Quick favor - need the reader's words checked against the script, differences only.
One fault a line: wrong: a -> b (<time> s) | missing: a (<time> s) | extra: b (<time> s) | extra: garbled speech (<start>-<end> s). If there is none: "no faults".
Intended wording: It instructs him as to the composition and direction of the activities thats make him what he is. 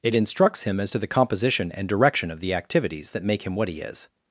wrong: thats -> that (3.1 s)